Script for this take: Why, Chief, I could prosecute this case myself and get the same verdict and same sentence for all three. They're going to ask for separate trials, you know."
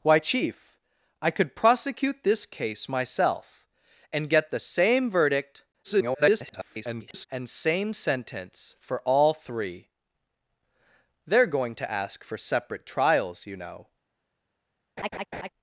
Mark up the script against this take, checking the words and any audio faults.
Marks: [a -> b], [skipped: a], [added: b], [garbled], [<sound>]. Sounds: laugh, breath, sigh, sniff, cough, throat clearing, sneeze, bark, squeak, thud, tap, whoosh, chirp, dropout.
Why, Chief, I could prosecute this case myself and get the same verdict [garbled] and same sentence for all three. They're going to ask for separate trials, you know." [laugh]